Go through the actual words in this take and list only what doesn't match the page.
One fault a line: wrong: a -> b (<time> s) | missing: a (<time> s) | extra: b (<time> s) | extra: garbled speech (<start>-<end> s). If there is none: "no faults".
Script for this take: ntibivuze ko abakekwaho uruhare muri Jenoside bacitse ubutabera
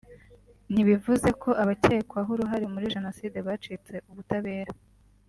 no faults